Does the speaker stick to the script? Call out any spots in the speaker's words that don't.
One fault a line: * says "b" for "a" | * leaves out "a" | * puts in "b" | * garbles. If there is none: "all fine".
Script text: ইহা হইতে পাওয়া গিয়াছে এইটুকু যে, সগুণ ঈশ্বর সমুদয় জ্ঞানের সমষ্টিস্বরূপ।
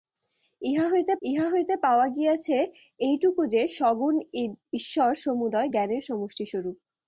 * puts in "ইহা হইতে"